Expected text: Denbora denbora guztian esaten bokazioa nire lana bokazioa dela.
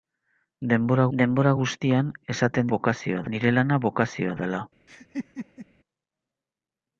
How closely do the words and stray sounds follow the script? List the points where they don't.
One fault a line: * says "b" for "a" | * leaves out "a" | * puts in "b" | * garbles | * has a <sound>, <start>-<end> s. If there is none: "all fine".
* has a laugh, 4.9-5.7 s